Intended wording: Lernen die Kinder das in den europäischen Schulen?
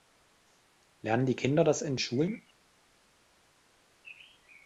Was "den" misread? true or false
true